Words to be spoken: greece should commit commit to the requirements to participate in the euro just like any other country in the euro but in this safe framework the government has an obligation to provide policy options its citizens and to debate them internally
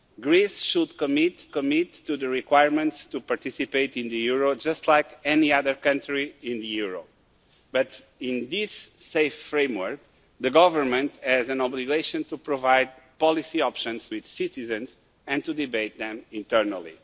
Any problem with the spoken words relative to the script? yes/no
no